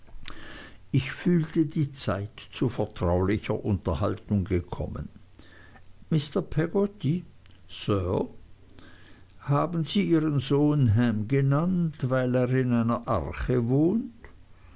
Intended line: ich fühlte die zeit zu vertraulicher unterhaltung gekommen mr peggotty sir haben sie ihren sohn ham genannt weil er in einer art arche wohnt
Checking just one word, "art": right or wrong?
wrong